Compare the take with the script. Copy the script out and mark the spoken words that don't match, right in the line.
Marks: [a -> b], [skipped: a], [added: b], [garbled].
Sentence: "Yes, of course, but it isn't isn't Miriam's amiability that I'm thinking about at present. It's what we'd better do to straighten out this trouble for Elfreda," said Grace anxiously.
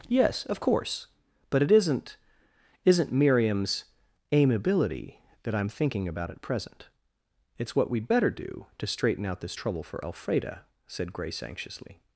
"Yes, of course, but it isn't isn't Miriam's amiability that I'm thinking about at present. It's what we'd better do to straighten out this trouble for Elfreda," said Grace anxiously.